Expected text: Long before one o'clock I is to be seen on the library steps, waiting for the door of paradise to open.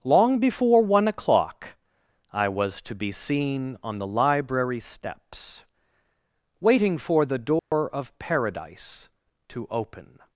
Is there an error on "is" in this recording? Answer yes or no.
yes